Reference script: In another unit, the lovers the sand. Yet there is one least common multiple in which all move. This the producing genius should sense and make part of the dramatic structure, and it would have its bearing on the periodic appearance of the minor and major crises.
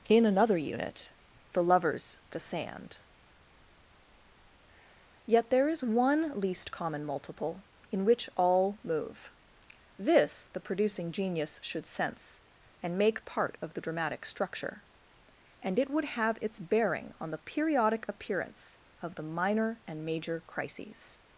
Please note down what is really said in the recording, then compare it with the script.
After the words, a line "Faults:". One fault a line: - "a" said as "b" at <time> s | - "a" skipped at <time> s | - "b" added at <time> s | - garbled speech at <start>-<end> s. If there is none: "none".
In another unit, the lovers the sand. Yet there is one least common multiple in which all move. This the producing genius should sense and make part of the dramatic structure, and it would have its bearing on the periodic appearance of the minor and major crises.
Faults:
none